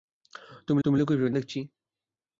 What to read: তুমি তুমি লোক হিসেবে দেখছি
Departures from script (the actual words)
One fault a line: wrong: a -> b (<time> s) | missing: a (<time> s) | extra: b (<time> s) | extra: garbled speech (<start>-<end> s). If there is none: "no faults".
no faults